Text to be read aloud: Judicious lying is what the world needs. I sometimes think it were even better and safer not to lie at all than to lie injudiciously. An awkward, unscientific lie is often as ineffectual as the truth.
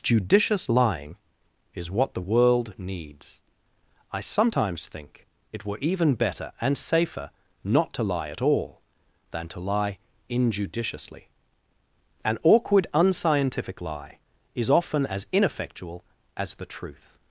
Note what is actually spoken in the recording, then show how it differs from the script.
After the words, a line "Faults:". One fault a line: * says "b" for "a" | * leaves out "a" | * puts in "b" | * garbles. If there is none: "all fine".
Judicious lying is what the world needs. I sometimes think it were even better and safer not to lie at all than to lie injudiciously. An awkward, unscientific lie is often as ineffectual as the truth.
Faults:
all fine